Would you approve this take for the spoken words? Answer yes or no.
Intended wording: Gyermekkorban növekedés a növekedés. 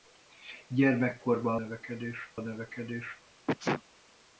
yes